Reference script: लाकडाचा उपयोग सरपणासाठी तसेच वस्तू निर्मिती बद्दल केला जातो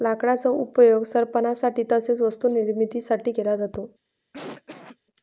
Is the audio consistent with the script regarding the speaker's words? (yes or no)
no